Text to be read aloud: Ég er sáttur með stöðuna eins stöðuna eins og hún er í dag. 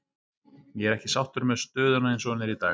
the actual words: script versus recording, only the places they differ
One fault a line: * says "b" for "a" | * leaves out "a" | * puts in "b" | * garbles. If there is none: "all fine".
* puts in "ekki"
* leaves out "stöðuna eins"